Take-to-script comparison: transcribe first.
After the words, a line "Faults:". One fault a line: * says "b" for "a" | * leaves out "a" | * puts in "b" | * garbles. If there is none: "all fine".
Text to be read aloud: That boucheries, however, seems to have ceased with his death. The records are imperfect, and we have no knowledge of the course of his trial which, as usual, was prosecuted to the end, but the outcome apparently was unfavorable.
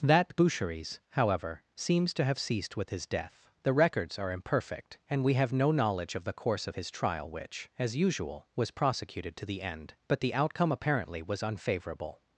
That boucheries, however, seems to have ceased with his death. The records are imperfect, and we have no knowledge of the course of his trial which, as usual, was prosecuted to the end, but the outcome apparently was unfavorable.
Faults:
all fine